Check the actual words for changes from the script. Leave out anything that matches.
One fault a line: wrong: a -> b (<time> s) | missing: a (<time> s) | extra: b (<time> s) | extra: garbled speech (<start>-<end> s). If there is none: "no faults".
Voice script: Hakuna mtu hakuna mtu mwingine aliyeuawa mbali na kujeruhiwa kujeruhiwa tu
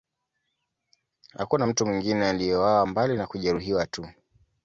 missing: hakuna mtu (1.9 s)
missing: kujeruhiwa (3.9 s)